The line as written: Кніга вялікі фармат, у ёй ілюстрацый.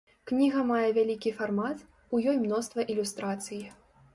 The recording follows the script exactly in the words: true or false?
false